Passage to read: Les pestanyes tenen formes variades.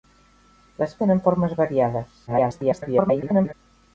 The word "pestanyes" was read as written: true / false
false